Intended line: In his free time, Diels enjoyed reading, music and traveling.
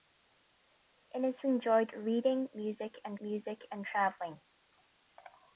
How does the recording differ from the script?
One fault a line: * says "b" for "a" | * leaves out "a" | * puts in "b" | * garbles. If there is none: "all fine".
* says "enjoyed reading music and" for "free time Diels enjoyed reading"